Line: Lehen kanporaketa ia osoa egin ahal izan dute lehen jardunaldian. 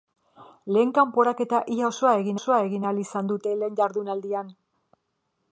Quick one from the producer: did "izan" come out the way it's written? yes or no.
yes